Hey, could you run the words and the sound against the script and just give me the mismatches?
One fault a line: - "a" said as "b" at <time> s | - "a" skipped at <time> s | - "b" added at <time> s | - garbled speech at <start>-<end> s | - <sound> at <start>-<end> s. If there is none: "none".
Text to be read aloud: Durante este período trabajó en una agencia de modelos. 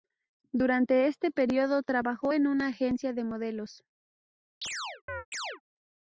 - chirp at 4.6-5.6 s